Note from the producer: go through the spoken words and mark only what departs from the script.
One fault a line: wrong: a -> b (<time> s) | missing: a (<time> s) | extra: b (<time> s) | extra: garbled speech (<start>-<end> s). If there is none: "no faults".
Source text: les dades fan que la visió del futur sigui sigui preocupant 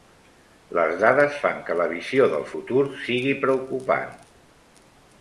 missing: sigui (3.4 s)